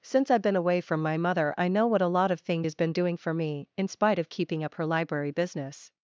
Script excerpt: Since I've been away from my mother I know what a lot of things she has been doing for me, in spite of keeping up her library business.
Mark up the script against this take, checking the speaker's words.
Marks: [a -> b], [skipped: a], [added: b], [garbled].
Since I've been away from my mother I know what a lot of things [skipped: she] has been doing for me, in spite of keeping up her library business.